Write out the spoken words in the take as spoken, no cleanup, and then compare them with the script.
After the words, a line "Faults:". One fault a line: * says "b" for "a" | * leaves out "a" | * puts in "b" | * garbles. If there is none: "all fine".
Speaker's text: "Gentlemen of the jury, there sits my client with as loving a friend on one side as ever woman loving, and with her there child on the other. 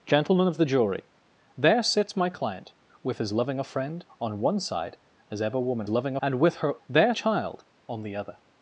"Gentlemen of the jury, there sits my client with as loving a friend on one side as ever woman loving, and with her there child on the other.
Faults:
all fine